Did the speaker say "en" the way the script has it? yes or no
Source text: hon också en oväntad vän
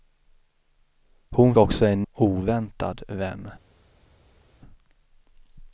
yes